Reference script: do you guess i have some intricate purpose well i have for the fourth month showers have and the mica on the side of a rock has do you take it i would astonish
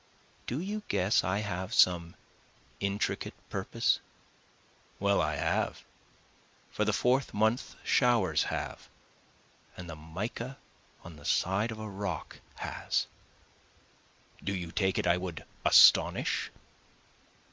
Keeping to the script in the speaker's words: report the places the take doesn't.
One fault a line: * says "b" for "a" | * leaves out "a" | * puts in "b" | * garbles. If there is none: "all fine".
all fine